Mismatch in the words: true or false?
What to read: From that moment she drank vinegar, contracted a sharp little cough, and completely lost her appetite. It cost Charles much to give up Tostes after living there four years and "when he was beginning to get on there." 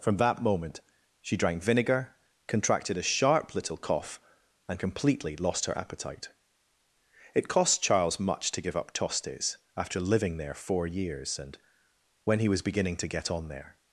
false